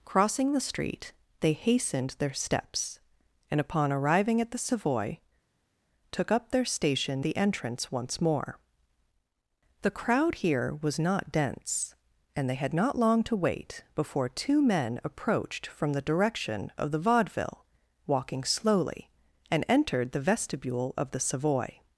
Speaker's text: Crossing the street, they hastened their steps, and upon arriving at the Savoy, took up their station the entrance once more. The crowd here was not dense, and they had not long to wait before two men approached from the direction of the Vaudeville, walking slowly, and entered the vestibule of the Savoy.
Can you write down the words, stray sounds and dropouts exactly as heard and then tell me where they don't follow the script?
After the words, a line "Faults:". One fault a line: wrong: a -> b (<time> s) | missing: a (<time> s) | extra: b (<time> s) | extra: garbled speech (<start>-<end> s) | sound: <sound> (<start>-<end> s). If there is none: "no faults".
Crossing the street, they hastened their steps, and upon arriving at the Savoy, took up their station the entrance once more. The crowd here was not dense, and they had not long to wait before two men approached from the direction of the Vaudeville, walking slowly, and entered the vestibule of the Savoy.
Faults:
no faults